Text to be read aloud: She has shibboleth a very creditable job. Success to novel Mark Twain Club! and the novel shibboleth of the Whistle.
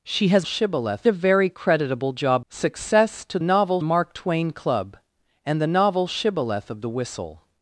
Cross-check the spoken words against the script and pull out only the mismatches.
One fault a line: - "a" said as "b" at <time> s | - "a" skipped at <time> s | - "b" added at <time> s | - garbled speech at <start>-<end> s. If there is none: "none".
none